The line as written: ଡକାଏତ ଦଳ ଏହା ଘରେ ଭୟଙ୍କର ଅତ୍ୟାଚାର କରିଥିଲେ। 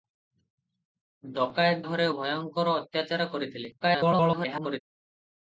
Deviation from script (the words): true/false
true